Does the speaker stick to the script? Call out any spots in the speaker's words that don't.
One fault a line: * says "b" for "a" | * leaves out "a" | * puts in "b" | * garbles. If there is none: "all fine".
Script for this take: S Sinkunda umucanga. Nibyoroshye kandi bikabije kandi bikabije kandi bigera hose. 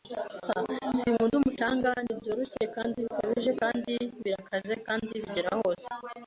* says "birakaze" for "bikabije"